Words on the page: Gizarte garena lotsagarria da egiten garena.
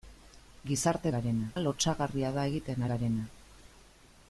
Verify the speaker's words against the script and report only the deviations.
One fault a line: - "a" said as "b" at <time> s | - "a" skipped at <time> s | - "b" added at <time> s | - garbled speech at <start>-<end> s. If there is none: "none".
none